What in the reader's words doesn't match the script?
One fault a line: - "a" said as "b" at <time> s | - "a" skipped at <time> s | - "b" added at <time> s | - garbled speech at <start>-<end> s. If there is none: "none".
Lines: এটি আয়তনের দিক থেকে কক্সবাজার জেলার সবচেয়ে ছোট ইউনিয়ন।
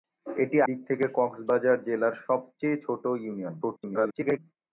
- "আয়তনের" skipped at 0.6 s
- garbled speech at 3.6-4.4 s